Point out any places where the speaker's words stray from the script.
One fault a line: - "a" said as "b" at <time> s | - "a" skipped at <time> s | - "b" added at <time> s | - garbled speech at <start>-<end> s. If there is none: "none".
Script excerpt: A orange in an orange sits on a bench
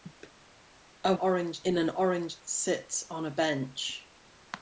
none